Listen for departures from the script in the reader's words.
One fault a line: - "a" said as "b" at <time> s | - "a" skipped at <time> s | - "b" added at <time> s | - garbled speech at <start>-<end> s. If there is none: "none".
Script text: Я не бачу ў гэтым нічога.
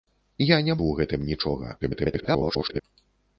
- "бачу" skipped at 0.8 s
- garbled speech at 1.8-2.8 s